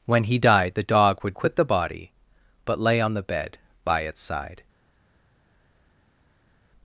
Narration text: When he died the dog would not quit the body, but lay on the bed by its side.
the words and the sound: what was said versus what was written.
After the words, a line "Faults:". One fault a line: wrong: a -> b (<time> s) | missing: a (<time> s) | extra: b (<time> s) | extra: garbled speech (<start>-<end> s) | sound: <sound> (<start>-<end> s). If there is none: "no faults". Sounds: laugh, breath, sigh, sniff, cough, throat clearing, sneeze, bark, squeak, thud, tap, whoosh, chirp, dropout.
When he died the dog would quit the body, but lay on the bed by its side.
Faults:
missing: not (1.4 s)